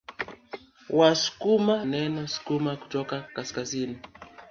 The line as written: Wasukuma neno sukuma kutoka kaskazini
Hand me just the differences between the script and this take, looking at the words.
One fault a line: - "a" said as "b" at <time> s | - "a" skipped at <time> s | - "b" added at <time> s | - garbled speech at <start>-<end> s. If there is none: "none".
none